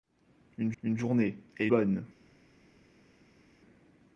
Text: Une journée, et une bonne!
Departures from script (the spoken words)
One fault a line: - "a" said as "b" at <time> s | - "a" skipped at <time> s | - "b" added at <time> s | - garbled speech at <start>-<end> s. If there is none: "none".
- "une" added at 0.8 s
- "une" skipped at 1.7 s